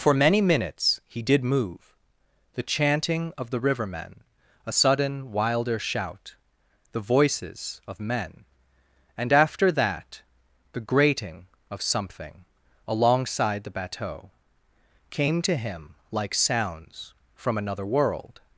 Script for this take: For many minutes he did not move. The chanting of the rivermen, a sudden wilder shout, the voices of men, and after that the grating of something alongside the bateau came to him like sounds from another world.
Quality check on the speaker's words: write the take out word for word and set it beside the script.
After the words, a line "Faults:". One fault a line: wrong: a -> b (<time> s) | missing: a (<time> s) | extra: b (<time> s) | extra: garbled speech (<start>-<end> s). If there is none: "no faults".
For many minutes he did move. The chanting of the rivermen, a sudden wilder shout, the voices of men, and after that the grating of something alongside the bateau came to him like sounds from another world.
Faults:
missing: not (1.4 s)